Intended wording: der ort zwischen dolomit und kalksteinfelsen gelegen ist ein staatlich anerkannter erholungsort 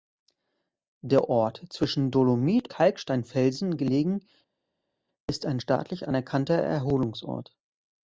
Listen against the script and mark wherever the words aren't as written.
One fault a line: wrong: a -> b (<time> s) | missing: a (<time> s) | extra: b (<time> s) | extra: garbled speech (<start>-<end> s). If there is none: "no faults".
missing: und (2.7 s)